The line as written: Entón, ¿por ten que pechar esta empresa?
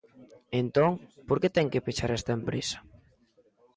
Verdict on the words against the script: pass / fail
fail